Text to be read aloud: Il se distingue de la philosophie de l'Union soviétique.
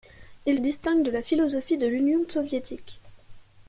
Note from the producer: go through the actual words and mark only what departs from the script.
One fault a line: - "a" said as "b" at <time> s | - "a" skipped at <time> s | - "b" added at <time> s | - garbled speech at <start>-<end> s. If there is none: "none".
- "se" skipped at 0.6 s